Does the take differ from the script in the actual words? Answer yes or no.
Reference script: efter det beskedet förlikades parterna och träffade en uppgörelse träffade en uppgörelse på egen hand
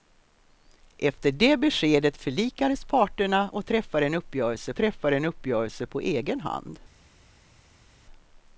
no